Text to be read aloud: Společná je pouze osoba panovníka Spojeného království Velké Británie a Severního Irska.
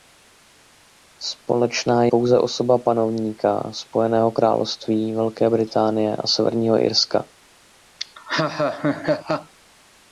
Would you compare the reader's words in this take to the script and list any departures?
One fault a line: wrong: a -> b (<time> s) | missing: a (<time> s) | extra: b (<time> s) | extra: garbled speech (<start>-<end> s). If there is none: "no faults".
no faults